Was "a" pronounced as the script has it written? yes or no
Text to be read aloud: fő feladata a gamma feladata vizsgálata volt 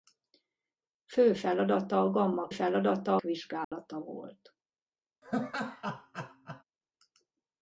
yes